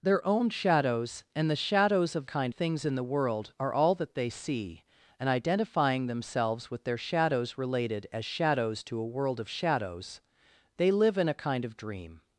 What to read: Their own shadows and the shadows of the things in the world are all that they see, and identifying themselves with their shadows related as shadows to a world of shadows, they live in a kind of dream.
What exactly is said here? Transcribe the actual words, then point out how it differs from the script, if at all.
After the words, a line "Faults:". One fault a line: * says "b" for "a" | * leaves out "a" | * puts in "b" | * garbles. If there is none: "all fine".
Their own shadows and the shadows of kind things in the world are all that they see, and identifying themselves with their shadows related as shadows to a world of shadows, they live in a kind of dream.
Faults:
* says "kind" for "the"